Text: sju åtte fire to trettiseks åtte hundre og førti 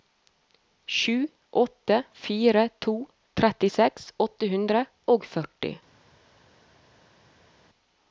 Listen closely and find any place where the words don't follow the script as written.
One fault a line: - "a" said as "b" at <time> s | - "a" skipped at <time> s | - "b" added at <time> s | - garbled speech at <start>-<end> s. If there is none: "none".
none